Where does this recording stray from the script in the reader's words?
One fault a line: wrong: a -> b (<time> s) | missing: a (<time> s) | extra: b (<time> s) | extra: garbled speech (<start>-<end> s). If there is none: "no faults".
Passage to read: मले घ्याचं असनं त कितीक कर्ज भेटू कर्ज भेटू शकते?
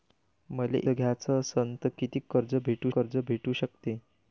no faults